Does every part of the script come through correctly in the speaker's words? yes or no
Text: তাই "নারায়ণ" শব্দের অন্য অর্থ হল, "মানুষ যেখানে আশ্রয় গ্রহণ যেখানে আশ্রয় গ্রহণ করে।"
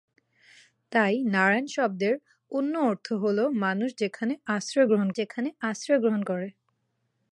yes